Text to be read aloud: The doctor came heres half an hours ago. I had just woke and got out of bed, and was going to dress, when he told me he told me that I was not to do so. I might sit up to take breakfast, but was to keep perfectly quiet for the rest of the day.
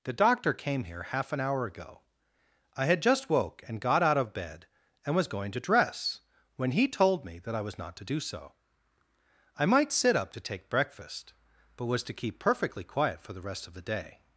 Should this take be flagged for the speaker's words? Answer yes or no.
yes